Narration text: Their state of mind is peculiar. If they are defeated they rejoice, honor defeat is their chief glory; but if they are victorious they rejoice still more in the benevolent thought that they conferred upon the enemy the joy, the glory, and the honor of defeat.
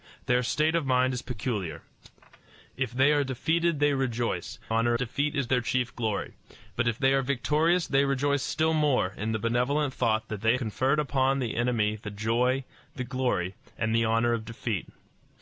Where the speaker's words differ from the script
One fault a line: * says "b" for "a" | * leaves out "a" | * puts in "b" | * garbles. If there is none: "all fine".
all fine